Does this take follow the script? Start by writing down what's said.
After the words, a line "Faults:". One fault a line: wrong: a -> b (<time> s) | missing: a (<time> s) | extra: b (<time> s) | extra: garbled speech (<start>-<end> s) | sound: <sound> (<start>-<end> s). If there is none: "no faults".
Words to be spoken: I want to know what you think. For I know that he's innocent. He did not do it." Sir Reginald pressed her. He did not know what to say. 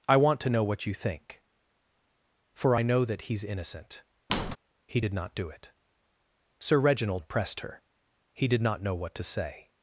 I want to know what you think. For I know that he's innocent. He did not do it." Sir Reginald pressed her. He did not know what to say.
Faults:
sound: squeak (4.3-4.6 s)